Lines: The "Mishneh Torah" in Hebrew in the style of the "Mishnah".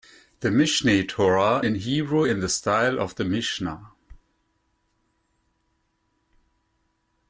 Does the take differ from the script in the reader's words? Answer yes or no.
no